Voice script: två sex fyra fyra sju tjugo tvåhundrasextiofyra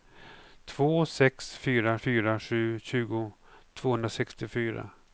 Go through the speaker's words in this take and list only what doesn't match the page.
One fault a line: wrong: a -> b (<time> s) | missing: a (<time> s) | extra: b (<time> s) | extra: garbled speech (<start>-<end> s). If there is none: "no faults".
no faults